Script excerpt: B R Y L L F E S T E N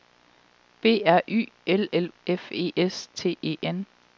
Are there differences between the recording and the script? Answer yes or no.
no